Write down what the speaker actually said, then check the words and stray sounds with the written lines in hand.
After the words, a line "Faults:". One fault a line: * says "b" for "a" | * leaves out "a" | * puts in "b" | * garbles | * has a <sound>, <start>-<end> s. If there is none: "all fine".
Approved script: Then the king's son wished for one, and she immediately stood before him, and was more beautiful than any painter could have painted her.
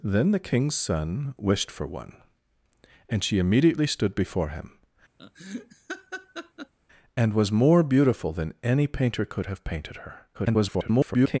Then the king's son wished for one, and she immediately stood before him, and was more beautiful than any painter could have painted her. [garbled]
Faults:
* has a laugh, 5.2-6.7 s
* garbles